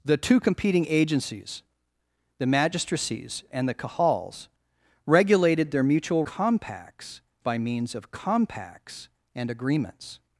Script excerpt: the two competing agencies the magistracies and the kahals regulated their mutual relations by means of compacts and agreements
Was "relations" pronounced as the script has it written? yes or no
no